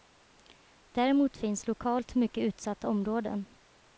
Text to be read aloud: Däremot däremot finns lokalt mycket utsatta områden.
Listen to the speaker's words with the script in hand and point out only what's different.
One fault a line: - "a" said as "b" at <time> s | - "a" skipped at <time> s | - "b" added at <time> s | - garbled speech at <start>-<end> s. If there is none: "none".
- "däremot" skipped at 1.4 s